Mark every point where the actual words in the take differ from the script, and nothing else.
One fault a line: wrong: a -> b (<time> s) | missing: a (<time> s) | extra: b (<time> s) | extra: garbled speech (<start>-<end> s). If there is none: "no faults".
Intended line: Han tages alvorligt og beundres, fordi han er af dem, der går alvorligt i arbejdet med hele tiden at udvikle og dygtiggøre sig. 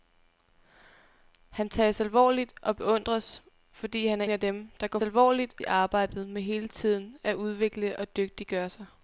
no faults